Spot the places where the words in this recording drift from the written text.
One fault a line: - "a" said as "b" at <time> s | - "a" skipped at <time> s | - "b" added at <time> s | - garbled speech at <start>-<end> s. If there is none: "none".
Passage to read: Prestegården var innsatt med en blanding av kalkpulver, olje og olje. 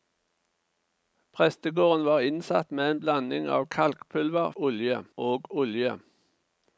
none